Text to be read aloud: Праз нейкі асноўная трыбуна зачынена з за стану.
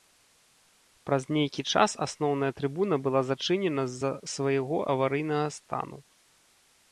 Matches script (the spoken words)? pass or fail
fail